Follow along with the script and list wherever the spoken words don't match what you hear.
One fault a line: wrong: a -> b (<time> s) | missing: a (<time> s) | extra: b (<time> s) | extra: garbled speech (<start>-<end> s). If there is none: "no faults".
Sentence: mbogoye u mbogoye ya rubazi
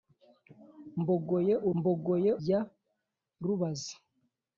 no faults